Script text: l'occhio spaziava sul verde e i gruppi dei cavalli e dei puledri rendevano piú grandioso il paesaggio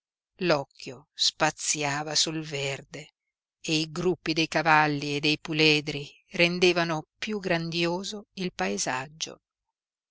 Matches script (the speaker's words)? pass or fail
pass